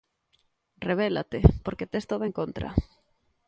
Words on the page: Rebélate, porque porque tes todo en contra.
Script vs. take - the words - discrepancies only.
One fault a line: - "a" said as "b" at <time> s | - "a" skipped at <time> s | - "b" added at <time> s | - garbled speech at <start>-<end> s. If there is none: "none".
- "porque" skipped at 1.9 s